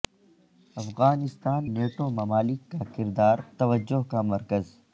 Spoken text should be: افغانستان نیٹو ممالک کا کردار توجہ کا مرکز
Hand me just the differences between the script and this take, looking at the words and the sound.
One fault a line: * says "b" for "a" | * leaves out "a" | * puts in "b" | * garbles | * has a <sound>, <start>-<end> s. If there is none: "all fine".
all fine